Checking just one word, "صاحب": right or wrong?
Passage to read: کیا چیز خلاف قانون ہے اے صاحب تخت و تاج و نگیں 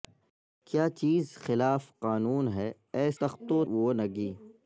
wrong